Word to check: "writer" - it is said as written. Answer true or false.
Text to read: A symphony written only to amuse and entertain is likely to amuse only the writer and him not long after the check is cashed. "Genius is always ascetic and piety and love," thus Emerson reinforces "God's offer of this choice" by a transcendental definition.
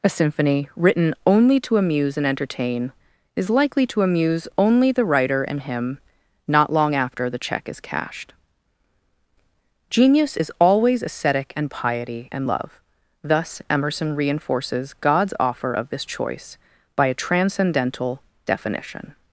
true